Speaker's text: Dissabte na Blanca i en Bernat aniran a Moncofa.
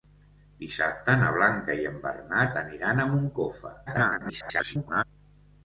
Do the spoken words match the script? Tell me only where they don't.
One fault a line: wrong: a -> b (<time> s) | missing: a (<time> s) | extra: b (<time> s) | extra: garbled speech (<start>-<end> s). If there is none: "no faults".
extra: garbled speech (3.9-5.0 s)